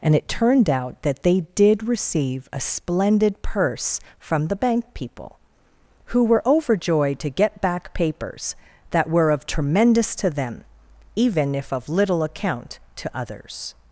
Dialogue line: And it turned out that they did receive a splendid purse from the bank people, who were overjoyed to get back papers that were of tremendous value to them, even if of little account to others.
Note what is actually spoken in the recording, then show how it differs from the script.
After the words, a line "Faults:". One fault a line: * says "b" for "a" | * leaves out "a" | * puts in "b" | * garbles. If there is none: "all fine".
And it turned out that they did receive a splendid purse from the bank people, who were overjoyed to get back papers that were of tremendous to them, even if of little account to others.
Faults:
* leaves out "value"